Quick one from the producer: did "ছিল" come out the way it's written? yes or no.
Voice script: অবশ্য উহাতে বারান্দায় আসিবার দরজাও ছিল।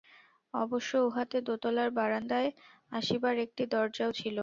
yes